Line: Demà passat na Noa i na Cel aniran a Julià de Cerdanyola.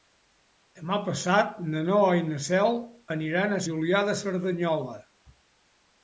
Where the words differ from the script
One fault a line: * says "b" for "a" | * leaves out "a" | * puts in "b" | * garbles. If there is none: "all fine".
all fine